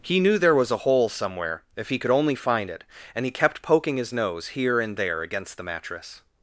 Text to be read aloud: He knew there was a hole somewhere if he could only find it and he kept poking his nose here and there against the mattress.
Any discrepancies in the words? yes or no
no